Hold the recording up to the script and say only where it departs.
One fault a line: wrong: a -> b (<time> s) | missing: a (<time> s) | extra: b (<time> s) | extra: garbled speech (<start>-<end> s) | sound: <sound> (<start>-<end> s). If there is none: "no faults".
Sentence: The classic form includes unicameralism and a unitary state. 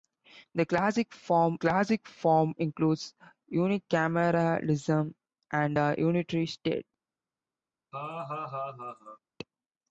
extra: classic form (1.6 s)
sound: laugh (7.9-9.2 s)